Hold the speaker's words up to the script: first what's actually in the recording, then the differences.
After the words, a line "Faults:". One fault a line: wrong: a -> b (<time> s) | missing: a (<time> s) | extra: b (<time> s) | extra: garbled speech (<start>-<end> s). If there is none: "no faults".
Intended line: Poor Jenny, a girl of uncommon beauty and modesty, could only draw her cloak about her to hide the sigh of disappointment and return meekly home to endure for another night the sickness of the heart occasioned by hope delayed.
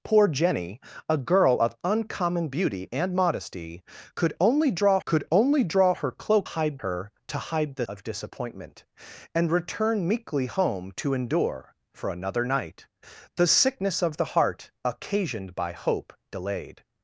Poor Jenny, a girl of uncommon beauty and modesty, could only draw could only draw her cloak hide her to hide the of disappointment and return meekly home to endure for another night the sickness of the heart occasioned by hope delayed.
Faults:
extra: could only draw (5.0 s)
wrong: about -> hide (6.4 s)
missing: sigh (7.9 s)